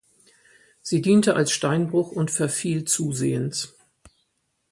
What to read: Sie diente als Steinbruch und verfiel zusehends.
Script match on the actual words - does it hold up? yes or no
yes